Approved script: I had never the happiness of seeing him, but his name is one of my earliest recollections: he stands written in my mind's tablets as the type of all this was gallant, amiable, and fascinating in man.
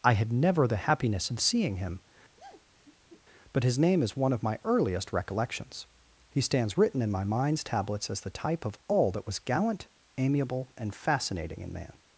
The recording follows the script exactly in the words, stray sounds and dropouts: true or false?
false